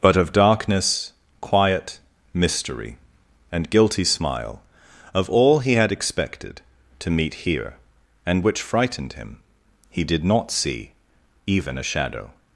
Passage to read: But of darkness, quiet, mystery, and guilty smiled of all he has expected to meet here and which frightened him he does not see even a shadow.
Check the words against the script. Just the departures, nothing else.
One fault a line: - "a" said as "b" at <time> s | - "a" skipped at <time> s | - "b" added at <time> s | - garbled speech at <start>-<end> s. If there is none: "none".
- "smiled" said as "smile" at 4.0 s
- "has" said as "had" at 5.7 s
- "does" said as "did" at 10.0 s